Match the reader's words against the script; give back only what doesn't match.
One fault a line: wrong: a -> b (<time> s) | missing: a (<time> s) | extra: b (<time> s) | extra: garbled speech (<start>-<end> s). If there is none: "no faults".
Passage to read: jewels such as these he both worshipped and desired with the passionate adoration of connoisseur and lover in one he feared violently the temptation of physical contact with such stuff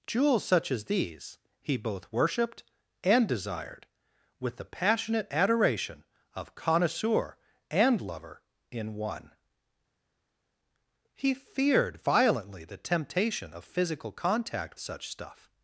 missing: with (14.8 s)